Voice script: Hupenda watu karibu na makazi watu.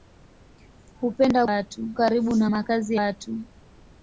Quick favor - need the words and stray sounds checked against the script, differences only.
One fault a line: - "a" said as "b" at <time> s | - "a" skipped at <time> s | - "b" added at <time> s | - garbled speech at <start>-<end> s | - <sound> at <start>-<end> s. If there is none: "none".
none